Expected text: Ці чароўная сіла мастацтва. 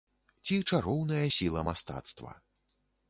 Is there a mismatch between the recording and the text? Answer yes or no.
no